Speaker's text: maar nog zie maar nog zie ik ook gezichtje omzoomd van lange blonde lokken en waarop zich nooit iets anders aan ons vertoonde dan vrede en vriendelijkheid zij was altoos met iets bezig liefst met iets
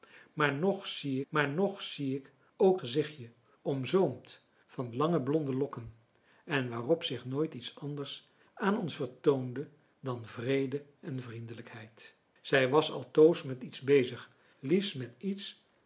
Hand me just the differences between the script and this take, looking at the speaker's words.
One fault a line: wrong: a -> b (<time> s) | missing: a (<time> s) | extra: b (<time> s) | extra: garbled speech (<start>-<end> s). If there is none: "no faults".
no faults